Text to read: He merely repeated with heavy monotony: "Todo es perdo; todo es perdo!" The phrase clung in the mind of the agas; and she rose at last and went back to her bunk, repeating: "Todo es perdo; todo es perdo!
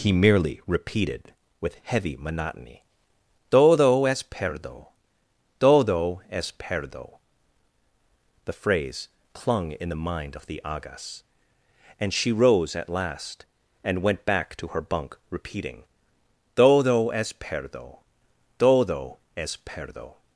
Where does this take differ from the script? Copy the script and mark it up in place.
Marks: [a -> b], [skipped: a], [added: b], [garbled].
He merely repeated with heavy monotony: "Todo es perdo; todo es perdo!" The phrase clung in the mind of the agas; and she rose at last and went back to her bunk, repeating: "Todo es perdo; todo es perdo!